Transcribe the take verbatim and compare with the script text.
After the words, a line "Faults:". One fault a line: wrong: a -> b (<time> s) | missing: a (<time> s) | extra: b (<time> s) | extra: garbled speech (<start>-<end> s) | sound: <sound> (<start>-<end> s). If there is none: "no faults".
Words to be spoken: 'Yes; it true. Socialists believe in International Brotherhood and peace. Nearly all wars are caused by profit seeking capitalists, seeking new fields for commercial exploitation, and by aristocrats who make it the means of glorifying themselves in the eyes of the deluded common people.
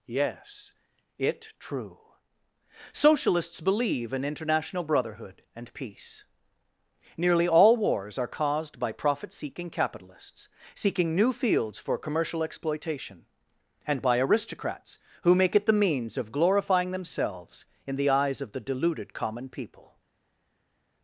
'Yes; it true. Socialists believe in International Brotherhood and peace. Nearly all wars are caused by profit seeking capitalists, seeking new fields for commercial exploitation, and by aristocrats who make it the means of glorifying themselves in the eyes of the deluded common people.
Faults:
no faults